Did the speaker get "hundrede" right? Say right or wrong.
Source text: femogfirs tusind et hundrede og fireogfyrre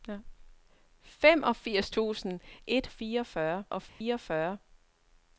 wrong